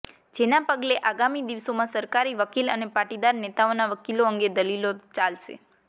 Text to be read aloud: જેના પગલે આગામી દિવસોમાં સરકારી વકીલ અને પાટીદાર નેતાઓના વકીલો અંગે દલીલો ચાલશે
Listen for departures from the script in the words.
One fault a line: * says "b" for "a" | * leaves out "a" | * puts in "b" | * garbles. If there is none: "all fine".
all fine